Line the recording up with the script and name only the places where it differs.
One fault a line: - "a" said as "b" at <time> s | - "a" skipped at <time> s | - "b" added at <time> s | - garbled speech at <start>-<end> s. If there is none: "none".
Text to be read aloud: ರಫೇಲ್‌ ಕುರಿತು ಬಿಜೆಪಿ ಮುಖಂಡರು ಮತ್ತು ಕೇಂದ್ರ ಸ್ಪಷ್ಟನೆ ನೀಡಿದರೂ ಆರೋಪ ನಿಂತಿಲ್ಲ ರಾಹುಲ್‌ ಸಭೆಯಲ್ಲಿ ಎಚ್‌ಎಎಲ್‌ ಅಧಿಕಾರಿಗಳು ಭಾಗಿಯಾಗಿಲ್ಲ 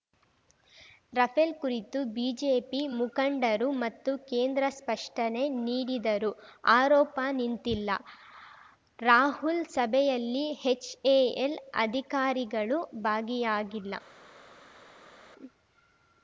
none